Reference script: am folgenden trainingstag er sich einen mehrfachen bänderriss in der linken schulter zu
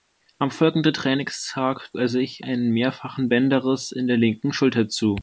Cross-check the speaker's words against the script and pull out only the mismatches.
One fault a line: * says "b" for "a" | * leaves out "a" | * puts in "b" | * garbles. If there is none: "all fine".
all fine